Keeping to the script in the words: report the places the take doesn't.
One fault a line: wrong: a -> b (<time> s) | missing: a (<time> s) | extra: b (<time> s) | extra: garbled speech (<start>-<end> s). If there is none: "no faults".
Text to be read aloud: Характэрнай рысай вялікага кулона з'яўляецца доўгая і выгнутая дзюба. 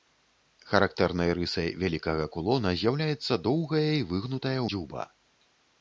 no faults